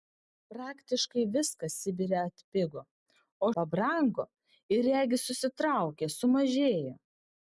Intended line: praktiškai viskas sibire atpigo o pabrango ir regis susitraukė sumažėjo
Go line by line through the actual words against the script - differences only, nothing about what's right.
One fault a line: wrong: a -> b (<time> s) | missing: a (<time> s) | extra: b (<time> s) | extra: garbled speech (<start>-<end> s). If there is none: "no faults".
no faults